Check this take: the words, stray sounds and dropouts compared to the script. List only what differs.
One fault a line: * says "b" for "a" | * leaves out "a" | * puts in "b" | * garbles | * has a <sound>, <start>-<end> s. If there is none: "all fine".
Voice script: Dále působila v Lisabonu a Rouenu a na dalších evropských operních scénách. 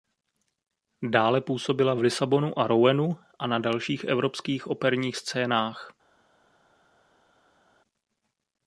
all fine